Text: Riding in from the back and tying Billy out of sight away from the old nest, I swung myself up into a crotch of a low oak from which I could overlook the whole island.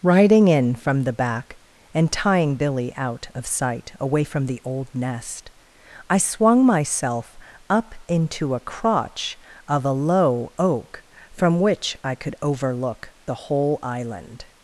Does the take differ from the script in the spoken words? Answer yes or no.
no